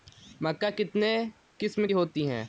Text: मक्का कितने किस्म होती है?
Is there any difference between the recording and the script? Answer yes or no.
no